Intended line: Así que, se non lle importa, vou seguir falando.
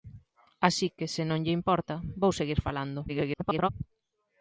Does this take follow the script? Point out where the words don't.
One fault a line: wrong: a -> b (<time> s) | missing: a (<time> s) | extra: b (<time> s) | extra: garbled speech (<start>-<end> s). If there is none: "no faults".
extra: garbled speech (3.1-3.7 s)